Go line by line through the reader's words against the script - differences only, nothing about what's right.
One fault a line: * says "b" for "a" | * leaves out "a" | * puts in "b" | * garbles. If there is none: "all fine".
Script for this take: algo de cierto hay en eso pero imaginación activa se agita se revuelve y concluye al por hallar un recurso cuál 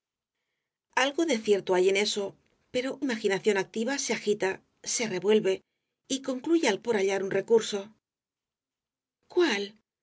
all fine